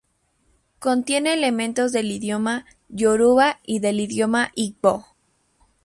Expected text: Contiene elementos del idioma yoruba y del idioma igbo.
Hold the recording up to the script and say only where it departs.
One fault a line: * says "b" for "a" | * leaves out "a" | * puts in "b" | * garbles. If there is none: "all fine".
all fine